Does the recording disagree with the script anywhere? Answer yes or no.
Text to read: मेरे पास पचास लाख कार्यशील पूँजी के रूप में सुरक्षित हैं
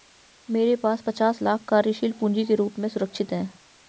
no